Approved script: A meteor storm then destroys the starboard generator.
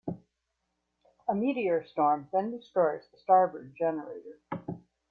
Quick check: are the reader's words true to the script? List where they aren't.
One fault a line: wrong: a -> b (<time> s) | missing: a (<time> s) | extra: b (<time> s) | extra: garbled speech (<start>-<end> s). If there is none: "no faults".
no faults